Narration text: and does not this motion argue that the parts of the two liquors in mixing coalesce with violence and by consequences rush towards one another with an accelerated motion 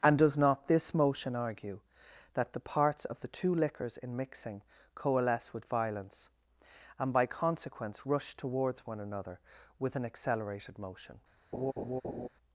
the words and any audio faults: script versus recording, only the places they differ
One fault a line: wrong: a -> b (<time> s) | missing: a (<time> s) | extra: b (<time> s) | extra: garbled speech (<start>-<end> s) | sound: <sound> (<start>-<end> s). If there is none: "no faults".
wrong: consequences -> consequence (7.3 s)
sound: laugh (11.5-12.3 s)